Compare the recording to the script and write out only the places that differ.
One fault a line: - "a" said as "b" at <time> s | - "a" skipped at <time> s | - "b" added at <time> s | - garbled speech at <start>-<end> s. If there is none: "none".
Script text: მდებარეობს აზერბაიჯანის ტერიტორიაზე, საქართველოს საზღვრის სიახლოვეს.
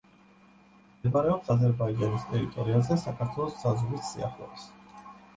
none